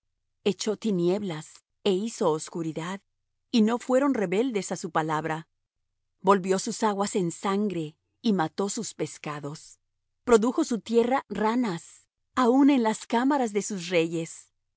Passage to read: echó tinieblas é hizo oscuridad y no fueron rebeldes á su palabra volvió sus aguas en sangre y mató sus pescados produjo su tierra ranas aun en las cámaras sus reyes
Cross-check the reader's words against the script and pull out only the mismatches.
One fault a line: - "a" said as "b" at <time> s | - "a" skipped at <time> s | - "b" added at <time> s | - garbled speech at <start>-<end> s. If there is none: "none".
- "de" added at 13.5 s